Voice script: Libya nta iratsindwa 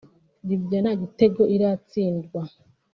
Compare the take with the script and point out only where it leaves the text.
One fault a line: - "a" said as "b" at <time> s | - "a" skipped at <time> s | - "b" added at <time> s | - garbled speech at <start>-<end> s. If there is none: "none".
- "gitego" added at 1.0 s